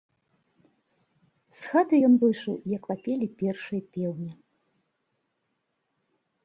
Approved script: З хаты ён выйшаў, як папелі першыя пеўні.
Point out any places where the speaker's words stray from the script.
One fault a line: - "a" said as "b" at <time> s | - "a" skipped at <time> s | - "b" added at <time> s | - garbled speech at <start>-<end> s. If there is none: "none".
none